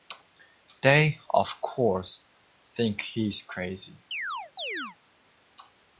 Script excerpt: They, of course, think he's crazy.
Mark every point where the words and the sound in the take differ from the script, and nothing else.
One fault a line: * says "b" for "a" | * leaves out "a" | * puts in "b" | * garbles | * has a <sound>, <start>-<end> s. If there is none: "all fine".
* has a chirp, 4.1-5.0 s